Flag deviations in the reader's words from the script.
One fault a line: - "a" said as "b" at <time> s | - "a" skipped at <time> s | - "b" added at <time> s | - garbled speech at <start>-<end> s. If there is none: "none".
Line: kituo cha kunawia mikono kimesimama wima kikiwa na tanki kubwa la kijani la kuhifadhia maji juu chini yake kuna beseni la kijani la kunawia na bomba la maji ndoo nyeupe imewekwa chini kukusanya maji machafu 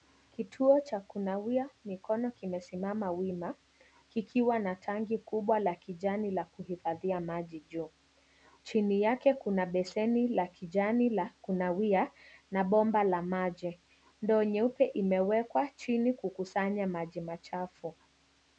none